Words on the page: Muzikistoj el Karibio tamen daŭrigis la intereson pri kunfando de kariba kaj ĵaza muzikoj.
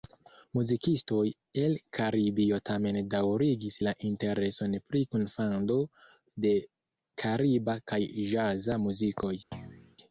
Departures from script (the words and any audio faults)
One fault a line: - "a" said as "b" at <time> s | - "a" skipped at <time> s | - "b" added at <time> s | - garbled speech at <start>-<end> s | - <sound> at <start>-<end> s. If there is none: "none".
- thud at 9.5-10.0 s